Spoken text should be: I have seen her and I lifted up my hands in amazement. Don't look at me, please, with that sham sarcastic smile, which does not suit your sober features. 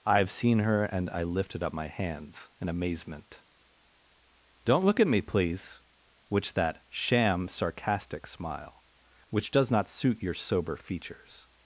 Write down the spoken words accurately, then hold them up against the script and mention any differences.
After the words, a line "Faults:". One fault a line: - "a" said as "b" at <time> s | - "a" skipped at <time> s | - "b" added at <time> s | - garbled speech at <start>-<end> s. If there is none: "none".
I have seen her and I lifted up my hands in amazement. Don't look at me, please, which that sham sarcastic smile, which does not suit your sober features.
Faults:
- "with" said as "which" at 6.3 s